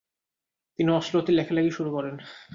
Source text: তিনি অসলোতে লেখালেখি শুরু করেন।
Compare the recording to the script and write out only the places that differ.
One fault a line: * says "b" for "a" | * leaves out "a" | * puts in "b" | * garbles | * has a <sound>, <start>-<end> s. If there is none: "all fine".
all fine